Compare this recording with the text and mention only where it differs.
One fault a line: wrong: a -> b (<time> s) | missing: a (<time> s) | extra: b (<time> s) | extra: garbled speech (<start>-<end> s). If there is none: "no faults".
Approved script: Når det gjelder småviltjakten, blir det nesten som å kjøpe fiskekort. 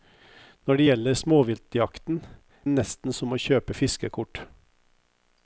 missing: blir (2.2 s)